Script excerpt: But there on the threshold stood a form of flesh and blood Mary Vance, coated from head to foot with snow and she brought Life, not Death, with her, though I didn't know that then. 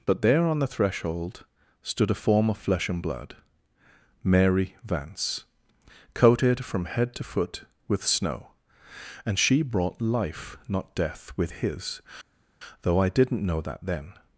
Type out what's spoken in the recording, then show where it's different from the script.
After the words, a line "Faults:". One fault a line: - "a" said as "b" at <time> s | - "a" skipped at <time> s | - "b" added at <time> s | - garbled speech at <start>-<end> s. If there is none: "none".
But there on the threshold stood a form of flesh and blood Mary Vance, coated from head to foot with snow and she brought Life, not Death, with his, though I didn't know that then.
Faults:
- "her" said as "his" at 11.5 s